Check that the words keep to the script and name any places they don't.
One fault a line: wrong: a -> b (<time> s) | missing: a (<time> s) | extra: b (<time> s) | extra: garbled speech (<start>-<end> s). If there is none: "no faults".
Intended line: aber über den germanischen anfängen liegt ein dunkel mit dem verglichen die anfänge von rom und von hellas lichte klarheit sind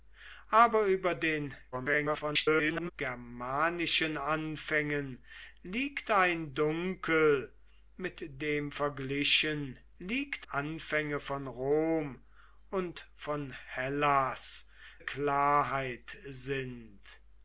extra: garbled speech (1.7-2.9 s)
wrong: die -> liegt (10.0 s)
missing: lichte (14.7 s)